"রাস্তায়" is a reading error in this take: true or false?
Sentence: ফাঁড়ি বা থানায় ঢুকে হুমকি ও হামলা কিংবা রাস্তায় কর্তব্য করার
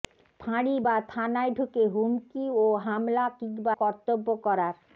true